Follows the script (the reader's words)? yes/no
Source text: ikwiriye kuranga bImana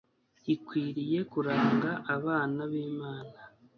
no